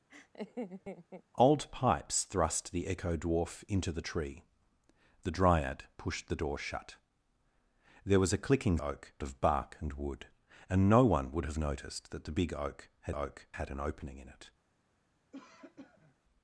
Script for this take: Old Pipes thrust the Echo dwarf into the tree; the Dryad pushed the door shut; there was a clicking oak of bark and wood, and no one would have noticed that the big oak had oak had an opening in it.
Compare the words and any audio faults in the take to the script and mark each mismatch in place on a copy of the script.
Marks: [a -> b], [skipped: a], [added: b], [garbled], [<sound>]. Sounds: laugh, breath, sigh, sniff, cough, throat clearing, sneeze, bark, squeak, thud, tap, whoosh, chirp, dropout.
[laugh] Old Pipes thrust the Echo dwarf into the tree; the Dryad pushed the door shut; there was a clicking oak of bark and wood, and no one would have noticed that the big oak had oak had an opening in it. [cough]